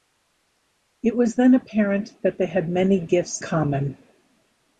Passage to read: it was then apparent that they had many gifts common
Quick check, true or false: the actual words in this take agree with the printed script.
true